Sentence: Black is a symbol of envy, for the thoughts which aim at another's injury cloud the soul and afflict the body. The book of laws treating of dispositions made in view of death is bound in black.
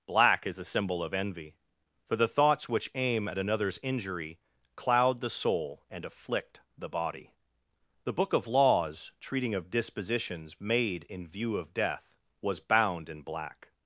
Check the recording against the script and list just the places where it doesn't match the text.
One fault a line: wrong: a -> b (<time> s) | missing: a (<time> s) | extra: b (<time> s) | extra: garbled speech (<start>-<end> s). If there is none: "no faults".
wrong: is -> was (12.4 s)